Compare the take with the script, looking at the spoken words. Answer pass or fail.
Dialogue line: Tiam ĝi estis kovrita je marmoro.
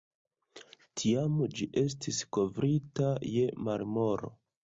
pass